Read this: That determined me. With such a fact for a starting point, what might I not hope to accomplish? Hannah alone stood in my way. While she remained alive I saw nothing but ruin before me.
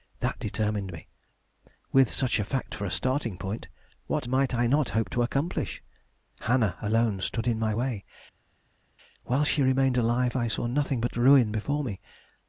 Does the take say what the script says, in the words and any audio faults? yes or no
yes